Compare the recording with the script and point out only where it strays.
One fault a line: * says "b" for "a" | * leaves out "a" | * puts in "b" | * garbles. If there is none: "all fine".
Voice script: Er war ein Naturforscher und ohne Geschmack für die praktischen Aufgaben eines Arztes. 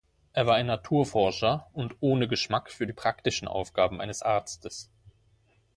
all fine